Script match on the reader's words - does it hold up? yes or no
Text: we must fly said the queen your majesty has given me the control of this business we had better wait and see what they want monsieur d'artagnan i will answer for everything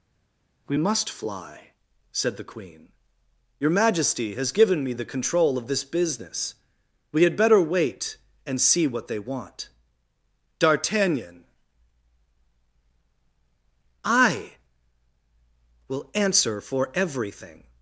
no